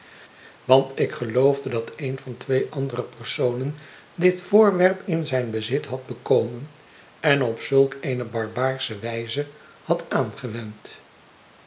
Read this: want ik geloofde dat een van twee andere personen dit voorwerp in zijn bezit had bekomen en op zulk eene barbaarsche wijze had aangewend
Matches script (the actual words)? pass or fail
pass